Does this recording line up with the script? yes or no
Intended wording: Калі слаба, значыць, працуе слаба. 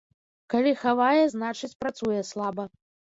no